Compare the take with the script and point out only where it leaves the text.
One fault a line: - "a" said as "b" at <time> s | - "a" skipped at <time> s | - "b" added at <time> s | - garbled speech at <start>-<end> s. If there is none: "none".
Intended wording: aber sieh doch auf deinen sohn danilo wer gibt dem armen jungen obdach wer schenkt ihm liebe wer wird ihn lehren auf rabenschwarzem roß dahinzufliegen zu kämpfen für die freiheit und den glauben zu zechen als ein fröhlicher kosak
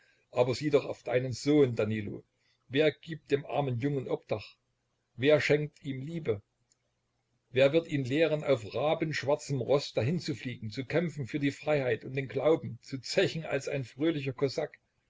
none